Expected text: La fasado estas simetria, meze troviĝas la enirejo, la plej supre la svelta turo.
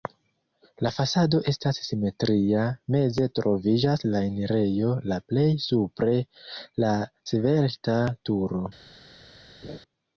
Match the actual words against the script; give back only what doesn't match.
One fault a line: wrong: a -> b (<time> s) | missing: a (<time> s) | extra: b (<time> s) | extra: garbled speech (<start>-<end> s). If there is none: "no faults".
no faults